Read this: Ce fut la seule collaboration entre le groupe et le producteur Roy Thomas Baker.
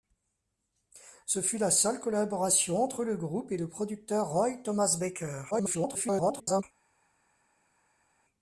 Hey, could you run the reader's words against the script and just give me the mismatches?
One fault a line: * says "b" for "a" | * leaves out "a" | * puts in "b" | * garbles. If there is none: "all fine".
* garbles